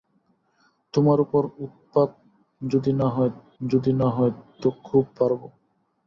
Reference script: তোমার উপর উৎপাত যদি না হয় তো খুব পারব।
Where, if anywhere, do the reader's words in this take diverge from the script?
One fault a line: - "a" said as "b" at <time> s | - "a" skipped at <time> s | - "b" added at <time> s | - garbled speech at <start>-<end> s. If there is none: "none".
- "যদি না হয়" added at 3.6 s